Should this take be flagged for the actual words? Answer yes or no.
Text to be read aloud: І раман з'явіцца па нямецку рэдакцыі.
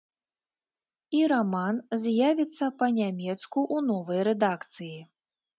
yes